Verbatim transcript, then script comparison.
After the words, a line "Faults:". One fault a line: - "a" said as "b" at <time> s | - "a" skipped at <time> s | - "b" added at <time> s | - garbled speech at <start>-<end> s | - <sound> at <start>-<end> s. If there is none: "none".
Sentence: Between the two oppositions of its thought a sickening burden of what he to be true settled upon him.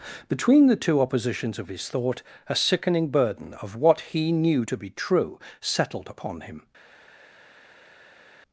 Between the two oppositions of his thought a sickening burden of what he knew to be true settled upon him.
Faults:
- "its" said as "his" at 1.7 s
- "knew" added at 4.3 s